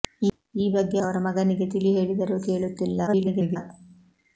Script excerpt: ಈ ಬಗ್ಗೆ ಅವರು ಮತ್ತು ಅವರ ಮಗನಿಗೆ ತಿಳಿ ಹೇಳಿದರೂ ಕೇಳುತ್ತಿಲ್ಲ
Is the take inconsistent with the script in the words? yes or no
yes